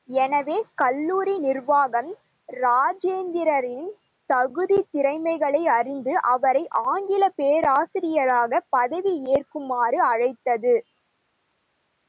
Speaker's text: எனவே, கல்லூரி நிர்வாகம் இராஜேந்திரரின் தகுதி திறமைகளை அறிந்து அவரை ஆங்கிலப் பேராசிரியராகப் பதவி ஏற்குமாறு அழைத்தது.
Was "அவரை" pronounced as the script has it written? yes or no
yes